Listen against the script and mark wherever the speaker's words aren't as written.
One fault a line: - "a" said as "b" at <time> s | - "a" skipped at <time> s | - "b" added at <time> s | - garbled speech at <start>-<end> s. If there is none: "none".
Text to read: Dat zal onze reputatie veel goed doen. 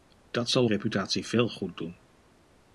- "onze" skipped at 0.7 s